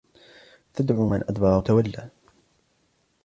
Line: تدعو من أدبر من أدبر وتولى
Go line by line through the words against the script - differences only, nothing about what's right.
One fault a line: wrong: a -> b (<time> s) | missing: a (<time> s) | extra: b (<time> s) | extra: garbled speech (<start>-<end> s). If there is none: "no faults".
missing: من أدبر (1.6 s)